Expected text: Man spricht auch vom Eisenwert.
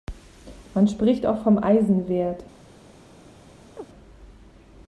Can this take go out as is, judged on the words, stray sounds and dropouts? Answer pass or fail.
fail